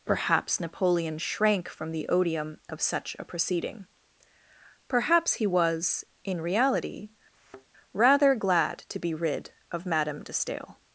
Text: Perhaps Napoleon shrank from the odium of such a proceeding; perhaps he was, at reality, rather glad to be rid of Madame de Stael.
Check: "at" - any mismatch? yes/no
yes